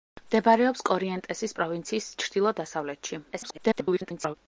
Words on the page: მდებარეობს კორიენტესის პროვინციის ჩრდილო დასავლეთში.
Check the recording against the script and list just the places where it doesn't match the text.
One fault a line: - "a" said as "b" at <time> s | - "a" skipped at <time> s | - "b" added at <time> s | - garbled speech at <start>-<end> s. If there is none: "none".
- garbled speech at 3.3-4.4 s